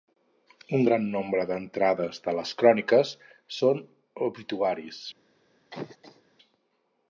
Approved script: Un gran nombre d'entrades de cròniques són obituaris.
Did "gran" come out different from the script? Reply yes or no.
no